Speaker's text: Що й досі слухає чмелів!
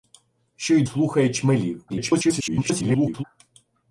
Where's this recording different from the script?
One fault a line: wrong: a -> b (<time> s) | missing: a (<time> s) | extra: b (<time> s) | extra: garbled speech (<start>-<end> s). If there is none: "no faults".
missing: досі (0.8 s)
extra: garbled speech (1.9-3.2 s)